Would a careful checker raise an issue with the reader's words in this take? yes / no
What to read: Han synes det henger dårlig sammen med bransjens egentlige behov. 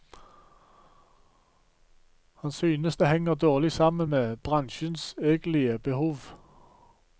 no